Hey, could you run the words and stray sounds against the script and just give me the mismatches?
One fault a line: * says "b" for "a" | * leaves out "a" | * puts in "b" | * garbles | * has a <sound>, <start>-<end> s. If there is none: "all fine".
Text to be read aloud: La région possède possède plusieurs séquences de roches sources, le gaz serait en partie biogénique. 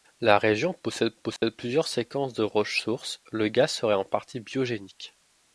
* has a dropout, 1.4-1.4 s